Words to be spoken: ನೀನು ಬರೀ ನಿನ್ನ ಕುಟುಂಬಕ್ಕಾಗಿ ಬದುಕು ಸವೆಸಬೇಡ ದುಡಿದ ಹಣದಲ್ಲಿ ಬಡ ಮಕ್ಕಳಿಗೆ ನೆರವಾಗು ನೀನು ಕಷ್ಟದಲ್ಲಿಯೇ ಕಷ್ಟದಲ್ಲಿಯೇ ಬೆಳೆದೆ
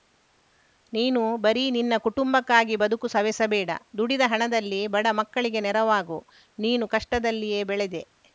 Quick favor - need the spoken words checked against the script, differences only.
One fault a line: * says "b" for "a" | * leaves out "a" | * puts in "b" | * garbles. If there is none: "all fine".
* leaves out "ಕಷ್ಟದಲ್ಲಿಯೇ"